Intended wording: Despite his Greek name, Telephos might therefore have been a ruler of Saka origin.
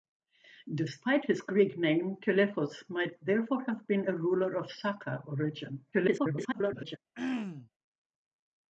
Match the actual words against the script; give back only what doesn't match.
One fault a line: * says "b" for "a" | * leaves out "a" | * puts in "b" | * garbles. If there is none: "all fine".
* garbles